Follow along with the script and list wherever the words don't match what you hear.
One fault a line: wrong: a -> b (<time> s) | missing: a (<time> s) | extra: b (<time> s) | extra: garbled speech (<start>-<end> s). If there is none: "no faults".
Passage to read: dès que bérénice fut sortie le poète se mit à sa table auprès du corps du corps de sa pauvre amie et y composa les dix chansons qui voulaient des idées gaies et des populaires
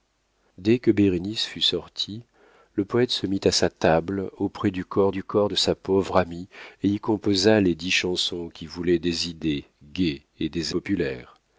no faults